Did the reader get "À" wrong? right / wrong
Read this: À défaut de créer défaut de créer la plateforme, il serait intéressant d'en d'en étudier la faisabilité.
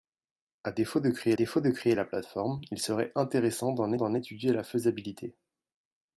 right